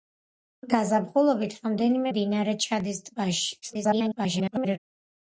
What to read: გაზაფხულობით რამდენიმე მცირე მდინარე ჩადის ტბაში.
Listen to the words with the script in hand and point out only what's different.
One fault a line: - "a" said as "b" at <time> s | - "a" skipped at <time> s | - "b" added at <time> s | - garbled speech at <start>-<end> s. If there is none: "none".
- "მცირე" skipped at 2.1 s
- garbled speech at 3.6-4.8 s